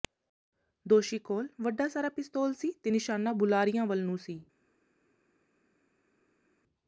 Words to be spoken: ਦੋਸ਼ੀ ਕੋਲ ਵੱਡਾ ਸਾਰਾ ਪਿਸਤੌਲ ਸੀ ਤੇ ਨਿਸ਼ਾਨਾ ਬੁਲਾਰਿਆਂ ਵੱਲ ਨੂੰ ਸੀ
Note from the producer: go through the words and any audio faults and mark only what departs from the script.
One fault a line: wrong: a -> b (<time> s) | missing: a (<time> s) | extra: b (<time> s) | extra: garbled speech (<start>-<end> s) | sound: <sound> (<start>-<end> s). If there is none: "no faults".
no faults